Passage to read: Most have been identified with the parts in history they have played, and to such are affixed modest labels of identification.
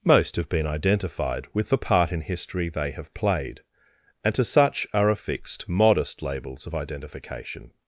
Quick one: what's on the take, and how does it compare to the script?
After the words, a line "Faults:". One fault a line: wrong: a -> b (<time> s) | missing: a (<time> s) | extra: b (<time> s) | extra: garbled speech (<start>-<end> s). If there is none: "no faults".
Most have been identified with the part in history they have played, and to such are affixed modest labels of identification.
Faults:
wrong: parts -> part (1.8 s)